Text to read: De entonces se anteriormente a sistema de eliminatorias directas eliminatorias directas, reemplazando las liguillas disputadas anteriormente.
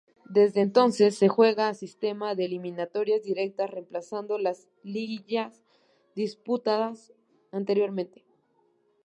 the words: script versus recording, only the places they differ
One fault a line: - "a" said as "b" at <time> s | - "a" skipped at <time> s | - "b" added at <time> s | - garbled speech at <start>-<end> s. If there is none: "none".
- "De" said as "Desde" at 0.3 s
- "anteriormente" said as "juega" at 1.3 s
- "eliminatorias directas" skipped at 3.7 s